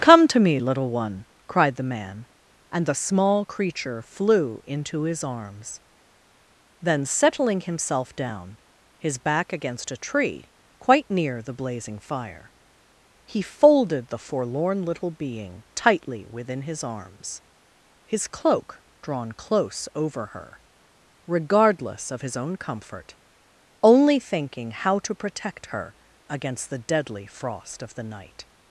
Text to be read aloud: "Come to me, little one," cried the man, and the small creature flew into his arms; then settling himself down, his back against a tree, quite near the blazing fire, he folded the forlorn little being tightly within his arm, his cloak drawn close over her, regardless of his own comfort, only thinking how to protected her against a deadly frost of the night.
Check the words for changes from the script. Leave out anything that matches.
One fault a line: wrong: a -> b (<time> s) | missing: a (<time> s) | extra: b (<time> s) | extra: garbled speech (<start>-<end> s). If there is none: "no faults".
wrong: arm -> arms (16.8 s)
wrong: protected -> protect (25.1 s)
wrong: a -> the (26.7 s)